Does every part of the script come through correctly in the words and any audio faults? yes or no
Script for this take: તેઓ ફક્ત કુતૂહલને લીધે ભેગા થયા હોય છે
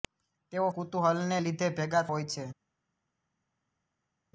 no